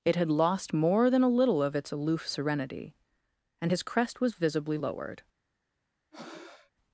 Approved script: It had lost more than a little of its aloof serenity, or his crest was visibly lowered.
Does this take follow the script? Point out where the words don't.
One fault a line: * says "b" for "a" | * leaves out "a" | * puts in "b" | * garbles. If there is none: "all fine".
* says "and" for "or"